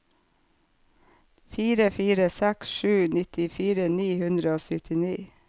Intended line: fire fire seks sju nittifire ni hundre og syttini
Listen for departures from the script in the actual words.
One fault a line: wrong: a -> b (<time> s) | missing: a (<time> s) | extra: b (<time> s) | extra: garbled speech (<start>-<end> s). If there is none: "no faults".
no faults